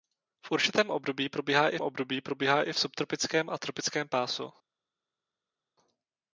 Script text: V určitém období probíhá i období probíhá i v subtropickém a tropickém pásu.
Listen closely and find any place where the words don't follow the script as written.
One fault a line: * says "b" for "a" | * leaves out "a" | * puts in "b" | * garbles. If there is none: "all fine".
all fine